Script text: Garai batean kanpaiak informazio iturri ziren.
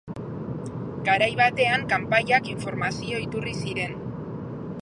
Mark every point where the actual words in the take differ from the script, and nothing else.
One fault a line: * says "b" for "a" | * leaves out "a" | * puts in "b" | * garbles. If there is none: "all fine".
all fine